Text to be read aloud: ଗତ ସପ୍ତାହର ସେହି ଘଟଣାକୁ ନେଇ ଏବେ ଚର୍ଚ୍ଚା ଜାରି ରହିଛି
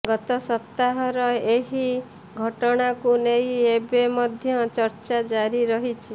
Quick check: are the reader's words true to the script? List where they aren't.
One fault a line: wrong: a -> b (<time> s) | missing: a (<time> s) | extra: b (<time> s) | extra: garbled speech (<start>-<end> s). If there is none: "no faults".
wrong: ସେହି -> ଏହି (1.5 s)
extra: ମଧ୍ୟ (4.2 s)